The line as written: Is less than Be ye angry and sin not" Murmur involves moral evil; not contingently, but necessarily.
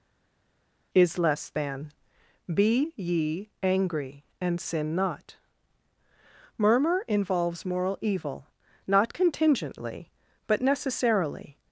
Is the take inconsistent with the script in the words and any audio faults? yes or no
no